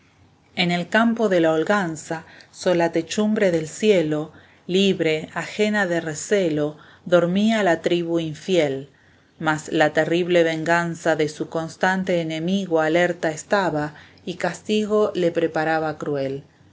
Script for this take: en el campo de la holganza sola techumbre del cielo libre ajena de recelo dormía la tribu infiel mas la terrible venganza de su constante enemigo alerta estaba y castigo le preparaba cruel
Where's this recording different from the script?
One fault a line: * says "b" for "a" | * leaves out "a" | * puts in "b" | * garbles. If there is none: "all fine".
all fine